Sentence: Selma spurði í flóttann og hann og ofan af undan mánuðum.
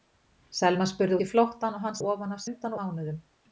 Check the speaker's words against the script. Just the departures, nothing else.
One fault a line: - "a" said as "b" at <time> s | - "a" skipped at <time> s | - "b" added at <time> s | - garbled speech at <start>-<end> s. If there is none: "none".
none